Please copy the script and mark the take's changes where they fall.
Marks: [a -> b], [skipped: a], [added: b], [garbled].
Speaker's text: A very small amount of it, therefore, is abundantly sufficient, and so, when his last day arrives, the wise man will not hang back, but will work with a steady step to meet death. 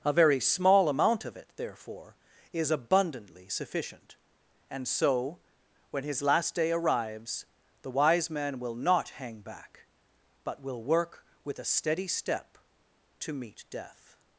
A very small amount of it, therefore, is abundantly sufficient, and so, when his last day arrives, the wise man will not hang back, but will work with a steady step to meet death.